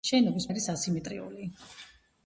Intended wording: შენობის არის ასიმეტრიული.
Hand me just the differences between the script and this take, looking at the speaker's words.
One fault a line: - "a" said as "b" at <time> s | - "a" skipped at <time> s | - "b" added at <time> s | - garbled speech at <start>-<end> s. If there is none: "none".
none